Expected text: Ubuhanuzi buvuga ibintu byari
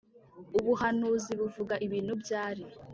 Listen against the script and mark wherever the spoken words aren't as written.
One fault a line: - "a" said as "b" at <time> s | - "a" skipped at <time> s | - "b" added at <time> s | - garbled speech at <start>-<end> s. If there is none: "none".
none